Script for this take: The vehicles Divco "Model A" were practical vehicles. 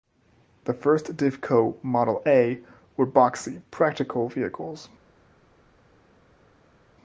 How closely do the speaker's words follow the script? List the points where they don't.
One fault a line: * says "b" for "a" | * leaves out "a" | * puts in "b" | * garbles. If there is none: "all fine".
* says "first" for "vehicles"
* puts in "boxy"